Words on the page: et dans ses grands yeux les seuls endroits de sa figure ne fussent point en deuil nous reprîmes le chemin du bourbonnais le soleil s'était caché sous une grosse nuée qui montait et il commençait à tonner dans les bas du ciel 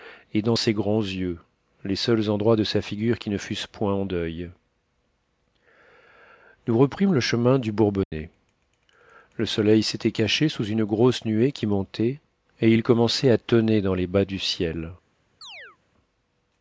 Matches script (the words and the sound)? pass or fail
fail